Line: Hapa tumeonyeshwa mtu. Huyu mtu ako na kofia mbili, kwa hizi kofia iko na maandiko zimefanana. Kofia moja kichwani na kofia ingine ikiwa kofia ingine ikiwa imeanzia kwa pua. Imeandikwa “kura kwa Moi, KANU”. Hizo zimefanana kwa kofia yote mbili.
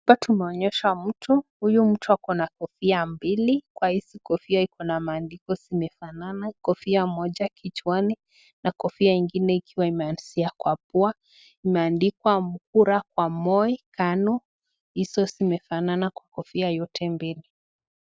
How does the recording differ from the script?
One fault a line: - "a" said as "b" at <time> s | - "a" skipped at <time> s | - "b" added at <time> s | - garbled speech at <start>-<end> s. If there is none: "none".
- "kofia ingine ikiwa" skipped at 9.9 s